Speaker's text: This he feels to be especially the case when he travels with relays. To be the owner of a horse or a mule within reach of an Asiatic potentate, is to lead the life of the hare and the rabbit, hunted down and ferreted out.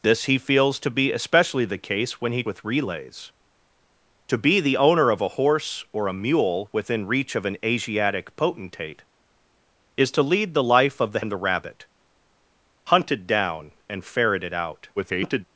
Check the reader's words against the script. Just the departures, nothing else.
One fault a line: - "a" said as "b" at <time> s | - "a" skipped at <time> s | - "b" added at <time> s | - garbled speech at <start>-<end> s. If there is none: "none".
- "travels" skipped at 2.4 s
- "hare" skipped at 11.2 s
- garbled speech at 15.0-15.5 s